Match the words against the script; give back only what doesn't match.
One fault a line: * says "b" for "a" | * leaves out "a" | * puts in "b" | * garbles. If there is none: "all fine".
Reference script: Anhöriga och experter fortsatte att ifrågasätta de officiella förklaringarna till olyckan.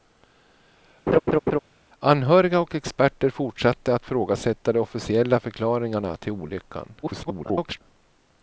* garbles